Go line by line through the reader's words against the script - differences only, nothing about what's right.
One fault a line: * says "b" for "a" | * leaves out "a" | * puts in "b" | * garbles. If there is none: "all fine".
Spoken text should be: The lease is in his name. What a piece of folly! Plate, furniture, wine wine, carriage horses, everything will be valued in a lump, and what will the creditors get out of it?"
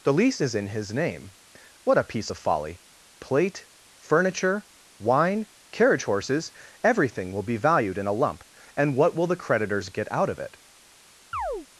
* leaves out "wine"